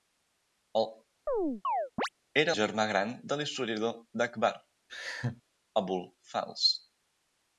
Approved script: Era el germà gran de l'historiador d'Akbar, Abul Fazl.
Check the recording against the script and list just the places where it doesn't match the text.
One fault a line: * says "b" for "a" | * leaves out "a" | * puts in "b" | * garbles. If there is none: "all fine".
* leaves out "el"